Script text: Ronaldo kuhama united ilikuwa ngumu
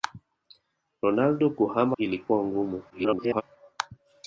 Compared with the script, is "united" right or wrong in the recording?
wrong